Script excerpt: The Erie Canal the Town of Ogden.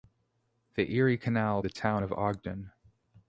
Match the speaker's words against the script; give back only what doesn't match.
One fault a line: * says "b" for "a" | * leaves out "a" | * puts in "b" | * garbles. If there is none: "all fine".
all fine